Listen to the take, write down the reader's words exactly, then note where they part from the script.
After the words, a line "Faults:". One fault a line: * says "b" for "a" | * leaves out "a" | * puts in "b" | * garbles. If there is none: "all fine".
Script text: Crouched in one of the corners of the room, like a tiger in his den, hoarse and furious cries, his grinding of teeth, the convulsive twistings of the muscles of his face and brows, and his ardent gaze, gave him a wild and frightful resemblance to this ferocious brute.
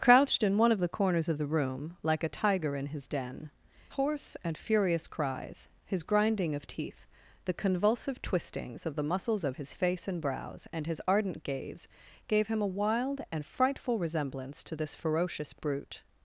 Crouched in one of the corners of the room, like a tiger in his den, hoarse and furious cries, his grinding of teeth, the convulsive twistings of the muscles of his face and brows, and his ardent gaze, gave him a wild and frightful resemblance to this ferocious brute.
Faults:
all fine